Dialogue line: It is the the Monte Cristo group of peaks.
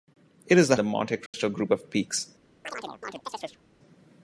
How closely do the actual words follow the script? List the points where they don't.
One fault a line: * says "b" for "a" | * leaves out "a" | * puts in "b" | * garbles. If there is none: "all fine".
all fine